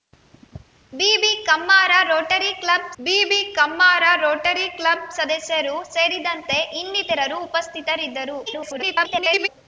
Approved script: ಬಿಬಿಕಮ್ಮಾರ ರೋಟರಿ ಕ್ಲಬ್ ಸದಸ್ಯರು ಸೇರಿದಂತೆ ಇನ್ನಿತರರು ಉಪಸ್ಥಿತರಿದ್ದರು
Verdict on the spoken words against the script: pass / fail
fail